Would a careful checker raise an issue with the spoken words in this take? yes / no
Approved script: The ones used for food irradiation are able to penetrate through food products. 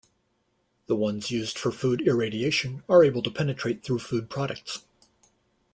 no